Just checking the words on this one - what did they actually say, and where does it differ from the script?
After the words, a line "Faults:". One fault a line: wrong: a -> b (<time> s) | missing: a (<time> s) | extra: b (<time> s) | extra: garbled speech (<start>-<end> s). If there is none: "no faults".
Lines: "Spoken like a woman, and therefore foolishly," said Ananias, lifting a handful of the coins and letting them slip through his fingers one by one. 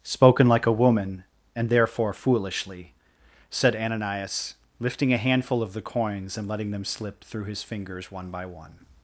"Spoken like a woman, and therefore foolishly," said Ananias, lifting a handful of the coins and letting them slip through his fingers one by one.
Faults:
no faults